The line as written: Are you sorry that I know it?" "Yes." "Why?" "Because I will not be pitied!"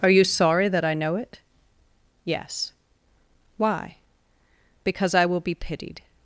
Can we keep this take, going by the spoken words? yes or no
no